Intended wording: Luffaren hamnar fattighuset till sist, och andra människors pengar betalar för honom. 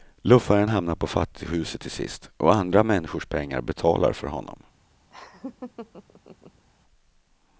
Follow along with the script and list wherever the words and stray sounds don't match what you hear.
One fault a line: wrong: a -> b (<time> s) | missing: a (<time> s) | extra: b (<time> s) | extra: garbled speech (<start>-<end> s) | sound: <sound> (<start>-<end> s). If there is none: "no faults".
extra: på (0.9 s)
sound: laugh (5.1-6.6 s)